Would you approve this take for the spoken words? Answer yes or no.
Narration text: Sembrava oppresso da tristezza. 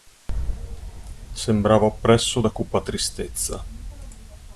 no